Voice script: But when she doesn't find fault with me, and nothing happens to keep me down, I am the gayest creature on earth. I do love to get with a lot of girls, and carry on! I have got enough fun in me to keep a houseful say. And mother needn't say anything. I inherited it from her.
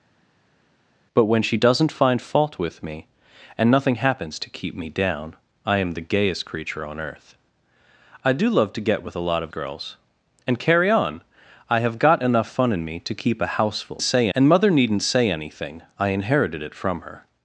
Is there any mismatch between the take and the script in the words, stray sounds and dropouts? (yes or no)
no